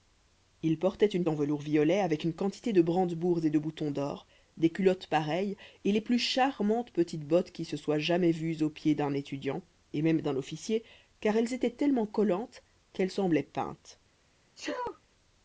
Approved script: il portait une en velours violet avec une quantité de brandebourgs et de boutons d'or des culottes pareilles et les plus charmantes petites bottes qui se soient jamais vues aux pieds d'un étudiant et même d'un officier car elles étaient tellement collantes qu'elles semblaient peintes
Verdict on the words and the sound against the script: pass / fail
fail